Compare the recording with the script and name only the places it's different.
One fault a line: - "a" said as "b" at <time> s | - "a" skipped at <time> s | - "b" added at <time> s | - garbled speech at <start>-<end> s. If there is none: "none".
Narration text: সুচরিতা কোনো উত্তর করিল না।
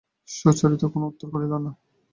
none